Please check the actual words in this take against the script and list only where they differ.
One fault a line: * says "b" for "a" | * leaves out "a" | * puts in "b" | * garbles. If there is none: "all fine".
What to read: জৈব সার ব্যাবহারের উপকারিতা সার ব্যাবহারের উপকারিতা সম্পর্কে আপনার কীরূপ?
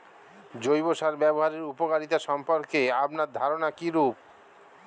* leaves out "সার ব্যাবহারের উপকারিতা"
* puts in "ধারনা"